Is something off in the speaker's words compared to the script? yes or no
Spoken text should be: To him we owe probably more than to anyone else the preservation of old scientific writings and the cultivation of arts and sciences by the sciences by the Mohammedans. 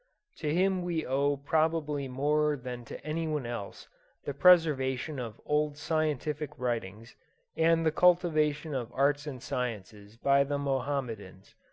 yes